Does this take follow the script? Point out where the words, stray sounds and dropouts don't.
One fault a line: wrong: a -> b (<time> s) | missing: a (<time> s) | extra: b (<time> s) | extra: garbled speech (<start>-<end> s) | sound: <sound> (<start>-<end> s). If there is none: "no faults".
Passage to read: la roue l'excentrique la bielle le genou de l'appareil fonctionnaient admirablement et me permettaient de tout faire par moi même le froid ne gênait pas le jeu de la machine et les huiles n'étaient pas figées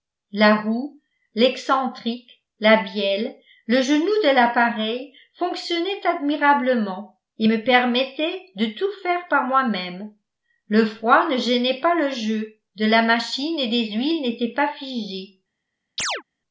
sound: chirp (16.0-16.2 s)